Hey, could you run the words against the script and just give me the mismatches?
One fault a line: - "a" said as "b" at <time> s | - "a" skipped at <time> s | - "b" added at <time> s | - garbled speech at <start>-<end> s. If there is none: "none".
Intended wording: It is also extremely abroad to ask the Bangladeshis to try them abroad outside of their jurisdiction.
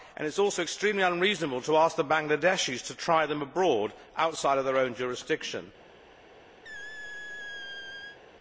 - "abroad" said as "unreasonable" at 1.0 s
- "own" added at 4.8 s